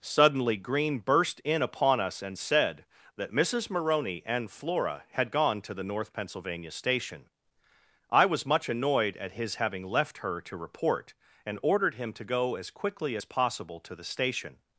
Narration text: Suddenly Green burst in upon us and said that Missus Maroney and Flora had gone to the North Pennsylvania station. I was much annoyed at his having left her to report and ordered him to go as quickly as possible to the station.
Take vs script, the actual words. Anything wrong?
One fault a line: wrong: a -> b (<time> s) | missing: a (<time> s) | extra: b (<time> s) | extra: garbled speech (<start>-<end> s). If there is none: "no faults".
no faults